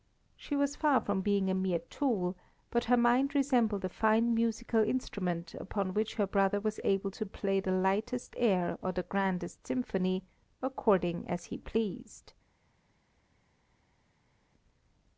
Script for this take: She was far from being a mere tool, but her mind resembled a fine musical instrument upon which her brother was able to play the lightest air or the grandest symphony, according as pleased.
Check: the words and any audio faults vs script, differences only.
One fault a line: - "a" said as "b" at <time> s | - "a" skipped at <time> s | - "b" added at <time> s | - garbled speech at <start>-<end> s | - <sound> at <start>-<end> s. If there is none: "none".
- "he" added at 11.4 s